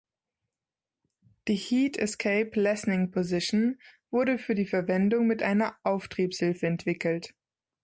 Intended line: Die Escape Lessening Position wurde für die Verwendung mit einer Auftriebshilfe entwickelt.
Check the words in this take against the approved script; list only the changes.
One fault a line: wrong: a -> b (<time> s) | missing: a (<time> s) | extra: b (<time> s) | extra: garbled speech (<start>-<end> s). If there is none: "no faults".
extra: Heat (1.5 s)